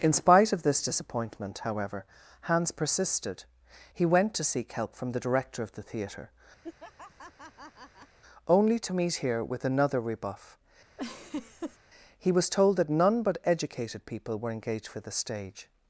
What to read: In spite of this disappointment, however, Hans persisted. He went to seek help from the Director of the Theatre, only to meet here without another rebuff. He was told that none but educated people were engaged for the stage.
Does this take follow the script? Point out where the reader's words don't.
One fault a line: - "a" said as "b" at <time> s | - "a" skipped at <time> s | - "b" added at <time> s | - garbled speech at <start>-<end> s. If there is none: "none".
- "without" said as "with" at 9.4 s